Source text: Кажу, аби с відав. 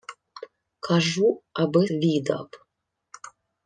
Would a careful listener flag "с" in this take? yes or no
yes